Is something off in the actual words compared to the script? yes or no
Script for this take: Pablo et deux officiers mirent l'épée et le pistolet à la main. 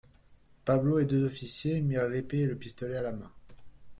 no